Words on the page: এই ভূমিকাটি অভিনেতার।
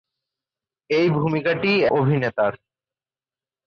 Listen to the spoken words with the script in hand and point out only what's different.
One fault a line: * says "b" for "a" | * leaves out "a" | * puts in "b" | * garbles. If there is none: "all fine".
all fine